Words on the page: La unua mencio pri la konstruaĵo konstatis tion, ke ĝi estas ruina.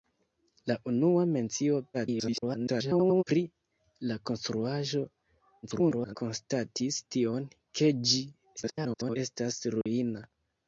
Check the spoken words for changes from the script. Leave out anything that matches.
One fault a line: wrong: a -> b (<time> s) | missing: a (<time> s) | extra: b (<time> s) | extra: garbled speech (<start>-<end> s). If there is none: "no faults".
extra: garbled speech (1.9-3.2 s)
extra: garbled speech (5.6-6.2 s)
extra: garbled speech (8.6-9.2 s)